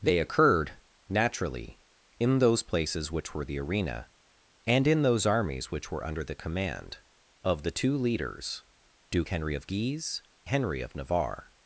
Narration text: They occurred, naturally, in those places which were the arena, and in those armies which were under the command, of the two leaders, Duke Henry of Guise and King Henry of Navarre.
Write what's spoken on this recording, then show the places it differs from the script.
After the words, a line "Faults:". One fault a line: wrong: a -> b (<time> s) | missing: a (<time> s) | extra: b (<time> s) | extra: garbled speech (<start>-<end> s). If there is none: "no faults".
They occurred, naturally, in those places which were the arena, and in those armies which were under the command, of the two leaders, Duke Henry of Guise Henry of Navarre.
Faults:
missing: and King (10.2 s)